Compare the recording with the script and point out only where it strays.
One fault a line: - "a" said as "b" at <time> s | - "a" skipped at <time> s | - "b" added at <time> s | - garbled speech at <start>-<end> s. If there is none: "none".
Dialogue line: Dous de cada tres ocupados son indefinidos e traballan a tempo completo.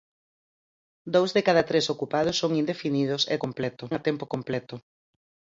- "traballan" said as "completo" at 3.4 s